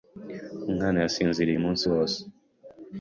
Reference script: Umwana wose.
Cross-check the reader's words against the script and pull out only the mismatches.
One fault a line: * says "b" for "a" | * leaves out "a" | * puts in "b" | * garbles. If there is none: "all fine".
* puts in "yasinziriye umunsi"